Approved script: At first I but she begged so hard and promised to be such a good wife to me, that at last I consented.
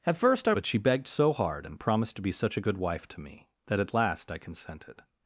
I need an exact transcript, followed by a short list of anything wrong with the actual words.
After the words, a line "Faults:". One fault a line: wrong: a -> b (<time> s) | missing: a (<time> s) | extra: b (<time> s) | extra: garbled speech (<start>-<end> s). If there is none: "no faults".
At first I but she begged so hard and promised to be such a good wife to me, that at last I consented.
Faults:
no faults